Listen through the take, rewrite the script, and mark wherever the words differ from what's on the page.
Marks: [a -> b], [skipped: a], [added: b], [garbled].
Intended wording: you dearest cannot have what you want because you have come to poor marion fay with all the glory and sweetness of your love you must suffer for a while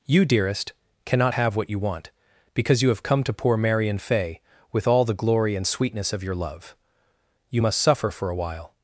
you dearest cannot have what you want because you have come to poor marion fay with all the glory and sweetness of your love you must suffer for a while